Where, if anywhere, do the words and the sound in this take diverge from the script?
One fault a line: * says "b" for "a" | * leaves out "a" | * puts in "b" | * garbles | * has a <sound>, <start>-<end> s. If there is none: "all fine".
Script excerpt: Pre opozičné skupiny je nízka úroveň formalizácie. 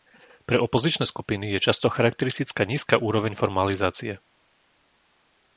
* puts in "často charakteristická"